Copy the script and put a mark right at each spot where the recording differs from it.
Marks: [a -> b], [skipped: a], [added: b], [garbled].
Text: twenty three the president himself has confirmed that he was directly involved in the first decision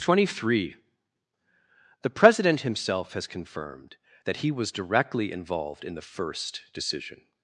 twenty three the president himself has confirmed that he was directly involved in the first decision